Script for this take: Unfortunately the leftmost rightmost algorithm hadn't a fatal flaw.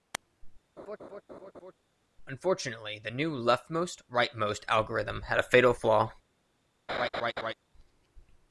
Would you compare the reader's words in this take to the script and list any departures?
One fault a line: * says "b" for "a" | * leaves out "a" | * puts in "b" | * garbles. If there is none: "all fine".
* puts in "new"
* says "had" for "hadn't"